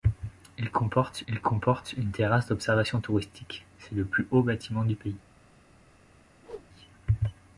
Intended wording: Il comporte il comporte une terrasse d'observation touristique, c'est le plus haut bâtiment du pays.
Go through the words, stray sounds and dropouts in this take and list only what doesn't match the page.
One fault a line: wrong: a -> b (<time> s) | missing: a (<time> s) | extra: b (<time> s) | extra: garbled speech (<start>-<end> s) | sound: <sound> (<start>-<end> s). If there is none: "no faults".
sound: whoosh (6.4-6.7 s)